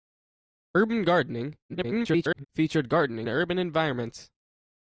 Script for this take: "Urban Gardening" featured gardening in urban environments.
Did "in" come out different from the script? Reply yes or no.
yes